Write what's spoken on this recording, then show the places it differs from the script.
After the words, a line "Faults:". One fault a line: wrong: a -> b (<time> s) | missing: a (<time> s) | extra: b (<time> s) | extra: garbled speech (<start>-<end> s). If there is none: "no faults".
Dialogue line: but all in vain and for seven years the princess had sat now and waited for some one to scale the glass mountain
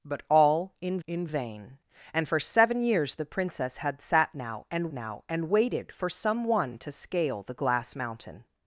but all in in vain and for seven years the princess had sat now and now and waited for some one to scale the glass mountain
Faults:
extra: in (1.1 s)
extra: now and (4.9 s)